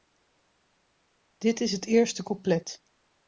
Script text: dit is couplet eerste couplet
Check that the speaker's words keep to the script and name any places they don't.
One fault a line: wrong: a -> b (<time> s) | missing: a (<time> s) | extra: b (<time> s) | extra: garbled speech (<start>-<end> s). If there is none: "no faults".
wrong: couplet -> het (1.7 s)